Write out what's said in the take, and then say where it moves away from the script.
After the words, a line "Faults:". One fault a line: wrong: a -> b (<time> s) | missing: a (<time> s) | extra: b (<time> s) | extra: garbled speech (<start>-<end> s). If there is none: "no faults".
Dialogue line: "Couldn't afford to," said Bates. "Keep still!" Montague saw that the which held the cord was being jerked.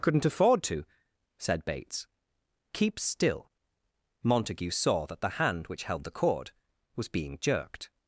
"Couldn't afford to," said Bates. "Keep still!" Montague saw that the hand which held the cord was being jerked.
Faults:
extra: hand (5.3 s)